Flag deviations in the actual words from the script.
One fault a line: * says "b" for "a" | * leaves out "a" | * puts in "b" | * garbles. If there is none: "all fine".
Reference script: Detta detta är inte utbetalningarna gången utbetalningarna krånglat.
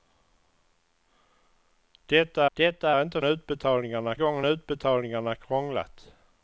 all fine